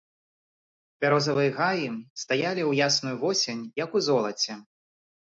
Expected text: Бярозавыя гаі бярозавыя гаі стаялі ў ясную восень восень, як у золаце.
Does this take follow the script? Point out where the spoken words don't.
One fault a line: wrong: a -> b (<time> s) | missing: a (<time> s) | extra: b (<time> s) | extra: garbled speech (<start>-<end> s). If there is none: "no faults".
missing: бярозавыя гаі (1.9 s)
missing: восень (3.7 s)